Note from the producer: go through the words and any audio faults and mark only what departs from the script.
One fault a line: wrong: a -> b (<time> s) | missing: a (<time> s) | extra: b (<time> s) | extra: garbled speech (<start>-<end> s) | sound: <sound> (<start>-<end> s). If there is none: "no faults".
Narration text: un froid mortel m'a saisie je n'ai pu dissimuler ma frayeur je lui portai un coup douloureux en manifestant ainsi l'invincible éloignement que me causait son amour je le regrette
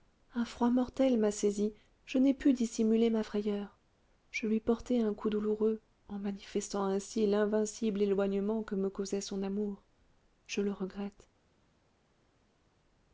no faults